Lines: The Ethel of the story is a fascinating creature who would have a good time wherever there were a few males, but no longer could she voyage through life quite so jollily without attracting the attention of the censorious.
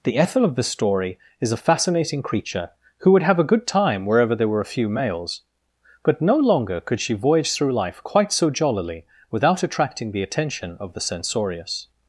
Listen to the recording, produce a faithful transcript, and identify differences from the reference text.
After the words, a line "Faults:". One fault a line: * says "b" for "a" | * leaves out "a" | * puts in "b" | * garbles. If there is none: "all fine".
The Ethel of the story is a fascinating creature who would have a good time wherever there were a few males, but no longer could she voyage through life quite so jollily without attracting the attention of the censorious.
Faults:
all fine